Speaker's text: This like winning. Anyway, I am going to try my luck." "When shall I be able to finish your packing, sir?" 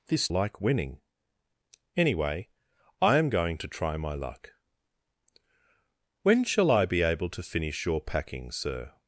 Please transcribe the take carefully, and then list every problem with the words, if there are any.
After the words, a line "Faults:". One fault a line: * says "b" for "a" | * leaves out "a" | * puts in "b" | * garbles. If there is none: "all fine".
This like winning. Anyway, I am going to try my luck." "When shall I be able to finish your packing, sir?"
Faults:
all fine